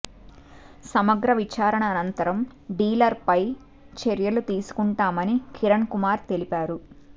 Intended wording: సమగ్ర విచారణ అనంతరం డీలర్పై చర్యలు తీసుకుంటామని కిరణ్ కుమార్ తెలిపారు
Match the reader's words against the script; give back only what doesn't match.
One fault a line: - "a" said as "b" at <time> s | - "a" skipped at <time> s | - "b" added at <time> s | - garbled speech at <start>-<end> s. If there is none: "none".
none